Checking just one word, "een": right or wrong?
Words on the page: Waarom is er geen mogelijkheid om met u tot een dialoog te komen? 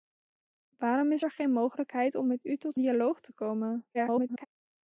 wrong